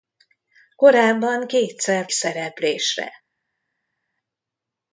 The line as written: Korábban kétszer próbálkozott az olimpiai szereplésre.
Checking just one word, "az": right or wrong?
wrong